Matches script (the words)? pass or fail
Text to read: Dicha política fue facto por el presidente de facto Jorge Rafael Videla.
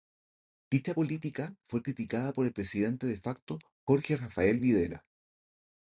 fail